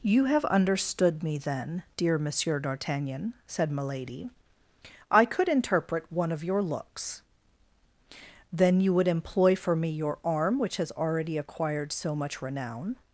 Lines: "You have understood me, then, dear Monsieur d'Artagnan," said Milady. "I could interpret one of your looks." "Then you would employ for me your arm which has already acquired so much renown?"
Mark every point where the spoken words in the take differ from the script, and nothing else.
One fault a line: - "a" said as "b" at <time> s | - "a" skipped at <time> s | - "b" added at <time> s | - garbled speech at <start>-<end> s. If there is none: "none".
none